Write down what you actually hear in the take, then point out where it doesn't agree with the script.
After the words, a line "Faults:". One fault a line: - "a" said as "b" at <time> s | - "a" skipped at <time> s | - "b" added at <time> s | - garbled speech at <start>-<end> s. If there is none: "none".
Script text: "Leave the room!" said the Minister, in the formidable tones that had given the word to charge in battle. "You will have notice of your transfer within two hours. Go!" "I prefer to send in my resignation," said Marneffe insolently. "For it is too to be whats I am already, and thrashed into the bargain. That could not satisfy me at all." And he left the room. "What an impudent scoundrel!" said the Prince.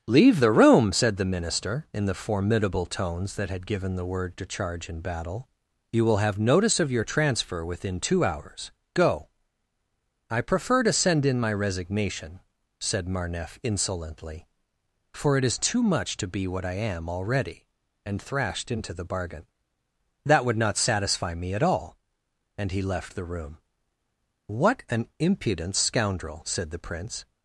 "Leave the room!" said the Minister, in the formidable tones that had given the word to charge in battle. "You will have notice of your transfer within two hours. Go!" "I prefer to send in my resignation," said Marneffe insolently. "For it is too much to be what I am already, and thrashed into the bargain. That would not satisfy me at all." And he left the room. "What an impudent scoundrel!" said the Prince.
Faults:
- "much" added at 15.8 s
- "whats" said as "what" at 16.5 s
- "could" said as "would" at 20.4 s